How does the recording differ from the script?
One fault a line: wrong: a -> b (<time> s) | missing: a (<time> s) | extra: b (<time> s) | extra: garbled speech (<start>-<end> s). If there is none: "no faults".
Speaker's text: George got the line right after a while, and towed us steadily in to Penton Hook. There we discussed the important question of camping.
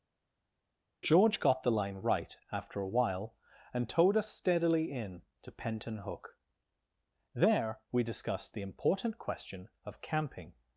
no faults